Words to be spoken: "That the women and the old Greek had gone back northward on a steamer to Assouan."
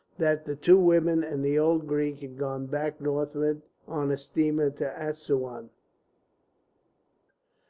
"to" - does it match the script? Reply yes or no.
yes